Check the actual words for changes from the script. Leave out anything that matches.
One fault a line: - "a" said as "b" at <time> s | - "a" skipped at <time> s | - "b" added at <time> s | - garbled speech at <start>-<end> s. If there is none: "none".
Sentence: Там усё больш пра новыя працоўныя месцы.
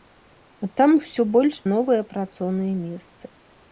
- "пра" skipped at 1.6 s